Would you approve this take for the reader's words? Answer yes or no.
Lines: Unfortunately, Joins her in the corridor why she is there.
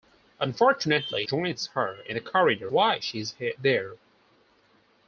yes